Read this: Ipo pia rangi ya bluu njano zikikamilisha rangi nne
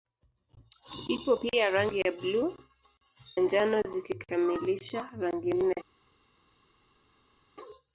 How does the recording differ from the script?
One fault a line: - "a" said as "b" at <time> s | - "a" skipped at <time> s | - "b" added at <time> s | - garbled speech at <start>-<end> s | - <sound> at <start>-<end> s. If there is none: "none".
none